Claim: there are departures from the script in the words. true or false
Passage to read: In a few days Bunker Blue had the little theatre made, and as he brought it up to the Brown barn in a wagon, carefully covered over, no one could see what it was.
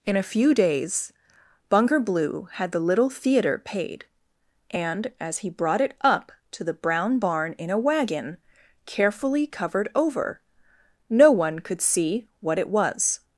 true